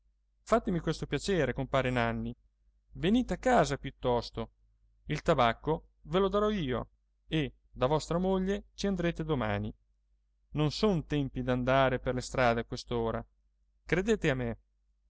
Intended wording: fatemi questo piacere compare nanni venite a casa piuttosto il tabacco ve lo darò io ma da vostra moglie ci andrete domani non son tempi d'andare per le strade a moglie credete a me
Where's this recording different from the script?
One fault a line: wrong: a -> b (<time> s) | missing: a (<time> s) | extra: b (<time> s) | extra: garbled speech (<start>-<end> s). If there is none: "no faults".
wrong: ma -> e (7.3 s)
wrong: moglie -> quest'ora (12.6 s)